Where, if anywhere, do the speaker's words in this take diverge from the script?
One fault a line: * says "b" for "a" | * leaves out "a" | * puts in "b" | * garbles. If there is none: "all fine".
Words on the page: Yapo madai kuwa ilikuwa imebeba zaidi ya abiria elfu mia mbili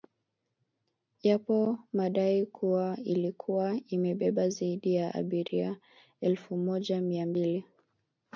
* puts in "moja"